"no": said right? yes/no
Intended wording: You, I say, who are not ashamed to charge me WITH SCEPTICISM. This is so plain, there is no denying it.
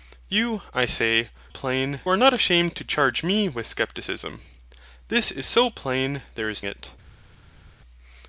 no